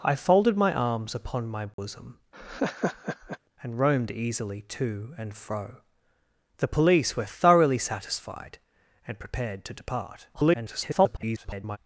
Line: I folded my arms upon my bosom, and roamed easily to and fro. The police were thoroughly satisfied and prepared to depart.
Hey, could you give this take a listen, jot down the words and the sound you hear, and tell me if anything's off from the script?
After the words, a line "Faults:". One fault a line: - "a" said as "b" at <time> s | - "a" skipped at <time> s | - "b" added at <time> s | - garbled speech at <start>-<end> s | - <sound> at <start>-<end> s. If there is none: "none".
I folded my arms upon my bosom, and roamed easily to and fro. The police were thoroughly satisfied and prepared to depart. [garbled]
Faults:
- dropout at 1.7-1.8 s
- laugh at 2.3-3.4 s
- garbled speech at 10.3-11.8 s